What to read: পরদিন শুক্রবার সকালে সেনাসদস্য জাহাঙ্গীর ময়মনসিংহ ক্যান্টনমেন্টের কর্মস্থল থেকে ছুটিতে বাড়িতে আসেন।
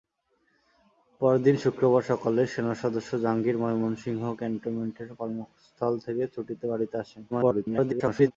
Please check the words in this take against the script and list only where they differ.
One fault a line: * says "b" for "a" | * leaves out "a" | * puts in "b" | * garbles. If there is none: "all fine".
* garbles